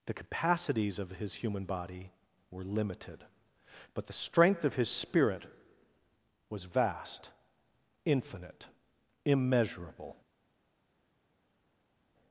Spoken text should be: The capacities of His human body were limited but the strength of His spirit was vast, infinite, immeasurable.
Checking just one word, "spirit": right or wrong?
right